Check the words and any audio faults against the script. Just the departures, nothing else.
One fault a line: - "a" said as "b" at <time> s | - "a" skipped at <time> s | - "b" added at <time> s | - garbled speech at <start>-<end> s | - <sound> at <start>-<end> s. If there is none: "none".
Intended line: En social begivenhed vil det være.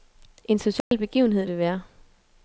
- dropout at 0.8-0.9 s
- "vil" skipped at 1.5 s